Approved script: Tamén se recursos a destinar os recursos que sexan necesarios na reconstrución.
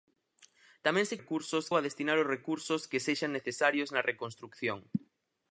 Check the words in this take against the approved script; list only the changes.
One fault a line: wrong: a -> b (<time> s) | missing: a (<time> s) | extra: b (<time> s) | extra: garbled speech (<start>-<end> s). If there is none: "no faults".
no faults